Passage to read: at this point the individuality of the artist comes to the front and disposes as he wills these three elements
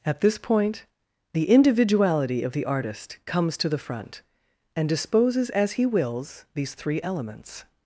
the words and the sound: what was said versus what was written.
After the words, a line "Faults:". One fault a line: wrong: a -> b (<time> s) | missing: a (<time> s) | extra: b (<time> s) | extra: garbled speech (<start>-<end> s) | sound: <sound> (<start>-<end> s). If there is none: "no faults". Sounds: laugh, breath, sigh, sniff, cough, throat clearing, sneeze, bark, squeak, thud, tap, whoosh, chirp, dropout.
at this point the individuality of the artist comes to the front and disposes as he wills these three elements
Faults:
no faults